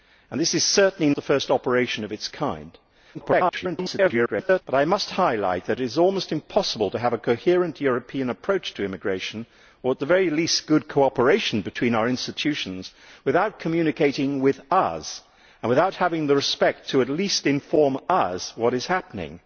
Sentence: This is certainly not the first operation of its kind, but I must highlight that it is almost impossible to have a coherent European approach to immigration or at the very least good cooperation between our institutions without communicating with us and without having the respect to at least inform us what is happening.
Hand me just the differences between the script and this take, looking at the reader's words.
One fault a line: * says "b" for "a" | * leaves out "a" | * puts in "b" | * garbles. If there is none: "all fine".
* leaves out "not"
* garbles